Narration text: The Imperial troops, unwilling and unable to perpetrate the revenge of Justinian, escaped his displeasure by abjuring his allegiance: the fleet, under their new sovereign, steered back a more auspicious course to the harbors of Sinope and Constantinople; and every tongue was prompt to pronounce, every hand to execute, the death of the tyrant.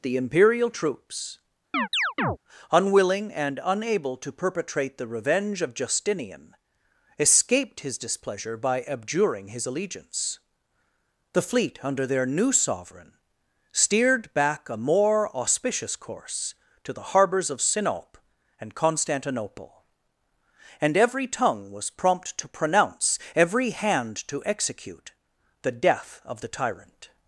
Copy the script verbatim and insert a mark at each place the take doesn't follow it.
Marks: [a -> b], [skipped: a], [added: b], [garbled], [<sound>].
The Imperial troops, [chirp] unwilling and unable to perpetrate the revenge of Justinian, escaped his displeasure by abjuring his allegiance: the fleet, under their new sovereign, steered back a more auspicious course to the harbors of Sinope and Constantinople; and every tongue was prompt to pronounce, every hand to execute, the death of the tyrant.